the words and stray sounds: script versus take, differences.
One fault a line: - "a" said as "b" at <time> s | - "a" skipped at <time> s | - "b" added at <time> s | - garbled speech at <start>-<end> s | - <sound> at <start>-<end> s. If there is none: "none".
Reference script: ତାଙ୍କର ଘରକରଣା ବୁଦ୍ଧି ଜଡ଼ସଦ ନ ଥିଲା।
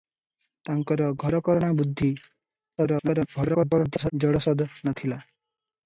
- garbled speech at 2.8-4.1 s